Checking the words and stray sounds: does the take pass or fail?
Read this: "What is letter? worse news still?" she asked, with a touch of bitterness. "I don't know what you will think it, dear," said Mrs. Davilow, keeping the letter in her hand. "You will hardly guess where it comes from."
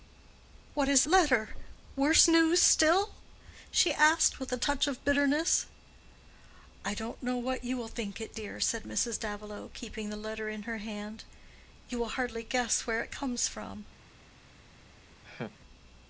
fail